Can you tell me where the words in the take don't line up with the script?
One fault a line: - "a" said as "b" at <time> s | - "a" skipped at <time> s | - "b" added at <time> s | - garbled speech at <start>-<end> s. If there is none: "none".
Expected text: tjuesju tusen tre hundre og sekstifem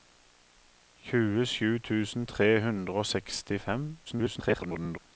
- garbled speech at 4.1-5.0 s